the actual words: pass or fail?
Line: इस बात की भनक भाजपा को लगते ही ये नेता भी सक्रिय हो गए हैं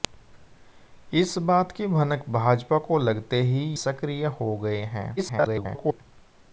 fail